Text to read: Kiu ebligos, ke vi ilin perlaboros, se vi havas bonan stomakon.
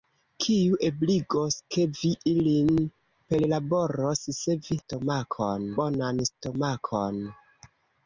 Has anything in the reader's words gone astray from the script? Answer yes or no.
yes